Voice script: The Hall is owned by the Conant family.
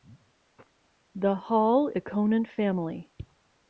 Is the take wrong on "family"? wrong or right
right